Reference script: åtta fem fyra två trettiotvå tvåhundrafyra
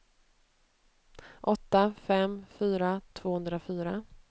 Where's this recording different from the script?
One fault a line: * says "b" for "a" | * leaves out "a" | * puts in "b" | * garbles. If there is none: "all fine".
* leaves out "två trettiotvå"